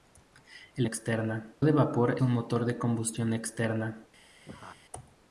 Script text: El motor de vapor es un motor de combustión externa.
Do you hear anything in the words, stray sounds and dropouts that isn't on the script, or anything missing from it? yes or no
yes